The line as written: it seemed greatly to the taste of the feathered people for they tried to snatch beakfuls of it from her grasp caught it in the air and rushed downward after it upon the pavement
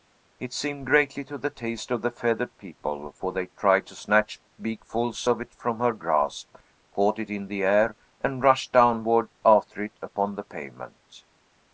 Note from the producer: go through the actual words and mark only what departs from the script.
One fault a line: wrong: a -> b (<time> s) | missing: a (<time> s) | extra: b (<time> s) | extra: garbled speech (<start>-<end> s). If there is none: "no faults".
no faults